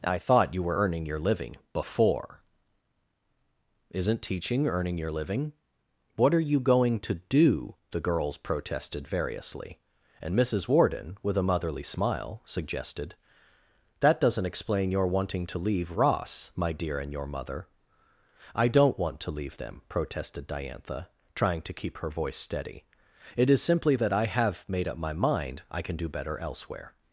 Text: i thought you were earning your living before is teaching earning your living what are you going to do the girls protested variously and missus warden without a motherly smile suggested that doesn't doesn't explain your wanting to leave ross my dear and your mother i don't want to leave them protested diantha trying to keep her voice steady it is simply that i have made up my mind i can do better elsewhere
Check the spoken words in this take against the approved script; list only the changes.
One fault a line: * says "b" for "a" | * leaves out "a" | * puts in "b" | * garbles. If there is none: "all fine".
* says "isn't" for "is"
* says "with" for "without"
* leaves out "doesn't"